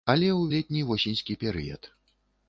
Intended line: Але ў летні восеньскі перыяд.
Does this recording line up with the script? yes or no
yes